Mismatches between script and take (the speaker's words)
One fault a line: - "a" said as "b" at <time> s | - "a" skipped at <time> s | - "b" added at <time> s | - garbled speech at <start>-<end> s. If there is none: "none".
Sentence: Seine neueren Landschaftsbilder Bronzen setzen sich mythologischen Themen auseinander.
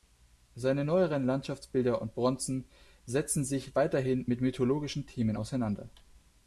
- "und" added at 2.0 s
- "weiterhin mit" added at 3.8 s